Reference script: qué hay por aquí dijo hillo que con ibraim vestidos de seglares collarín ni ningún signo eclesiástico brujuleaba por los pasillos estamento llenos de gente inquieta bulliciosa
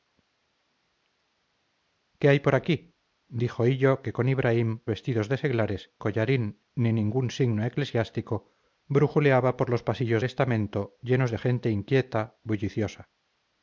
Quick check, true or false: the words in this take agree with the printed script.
true